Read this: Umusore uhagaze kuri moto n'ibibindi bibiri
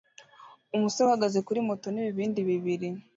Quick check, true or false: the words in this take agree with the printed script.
true